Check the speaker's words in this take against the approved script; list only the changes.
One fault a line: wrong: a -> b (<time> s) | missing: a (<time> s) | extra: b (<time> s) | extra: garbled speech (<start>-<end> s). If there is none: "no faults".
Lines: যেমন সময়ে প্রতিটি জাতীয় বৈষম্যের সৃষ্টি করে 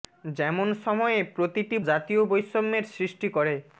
no faults